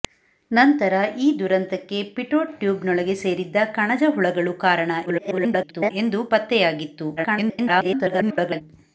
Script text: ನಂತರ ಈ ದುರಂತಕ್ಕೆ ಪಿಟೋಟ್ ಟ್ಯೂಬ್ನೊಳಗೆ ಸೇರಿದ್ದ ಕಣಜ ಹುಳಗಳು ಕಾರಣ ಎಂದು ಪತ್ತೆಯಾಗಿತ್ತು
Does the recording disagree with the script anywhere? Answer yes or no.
yes